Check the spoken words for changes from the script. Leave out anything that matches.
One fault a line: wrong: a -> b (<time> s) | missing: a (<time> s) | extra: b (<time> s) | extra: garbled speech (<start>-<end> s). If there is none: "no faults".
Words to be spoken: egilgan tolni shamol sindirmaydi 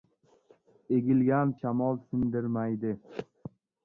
missing: tolni (1.5 s)